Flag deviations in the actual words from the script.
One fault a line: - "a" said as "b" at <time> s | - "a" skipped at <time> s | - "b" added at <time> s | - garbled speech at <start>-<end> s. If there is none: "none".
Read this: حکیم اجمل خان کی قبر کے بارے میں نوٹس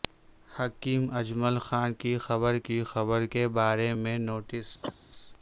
- "کی قبر" added at 2.6 s